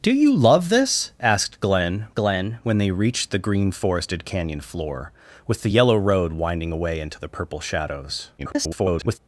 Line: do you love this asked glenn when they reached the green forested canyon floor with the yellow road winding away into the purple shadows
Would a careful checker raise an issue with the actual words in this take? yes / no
yes